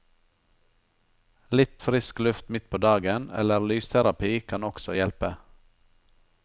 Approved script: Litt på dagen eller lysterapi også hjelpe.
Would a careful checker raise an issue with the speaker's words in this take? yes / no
yes